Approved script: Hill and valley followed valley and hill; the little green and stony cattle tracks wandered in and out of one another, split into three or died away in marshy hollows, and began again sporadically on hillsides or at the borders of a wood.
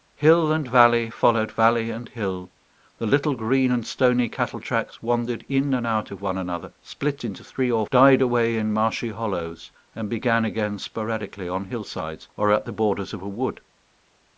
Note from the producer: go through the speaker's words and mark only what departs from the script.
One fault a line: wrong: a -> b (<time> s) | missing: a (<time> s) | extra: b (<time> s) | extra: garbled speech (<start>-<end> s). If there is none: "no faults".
no faults